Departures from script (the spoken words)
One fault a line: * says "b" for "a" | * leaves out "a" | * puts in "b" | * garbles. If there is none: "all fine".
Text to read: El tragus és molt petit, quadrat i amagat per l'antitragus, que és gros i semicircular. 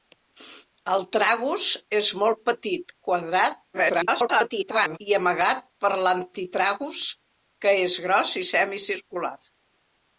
* garbles